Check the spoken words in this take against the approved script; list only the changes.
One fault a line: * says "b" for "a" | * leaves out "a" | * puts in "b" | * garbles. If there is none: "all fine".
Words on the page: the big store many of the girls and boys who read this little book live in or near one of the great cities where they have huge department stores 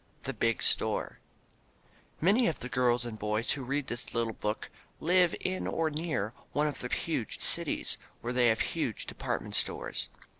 * says "huge" for "great"